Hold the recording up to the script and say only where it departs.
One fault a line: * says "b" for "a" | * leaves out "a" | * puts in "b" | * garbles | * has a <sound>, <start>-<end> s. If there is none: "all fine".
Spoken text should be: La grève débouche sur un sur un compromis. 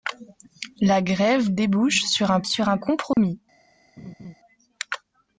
* has a dropout, 3.1-3.2 s
* has a laugh, 4.0-4.3 s